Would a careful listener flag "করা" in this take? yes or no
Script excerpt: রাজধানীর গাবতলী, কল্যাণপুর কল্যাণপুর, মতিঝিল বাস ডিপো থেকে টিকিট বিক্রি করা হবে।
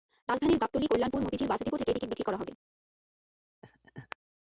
no